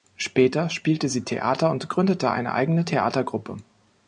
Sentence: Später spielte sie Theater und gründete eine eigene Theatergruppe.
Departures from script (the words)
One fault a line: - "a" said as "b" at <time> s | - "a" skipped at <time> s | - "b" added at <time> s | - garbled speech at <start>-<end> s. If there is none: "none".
none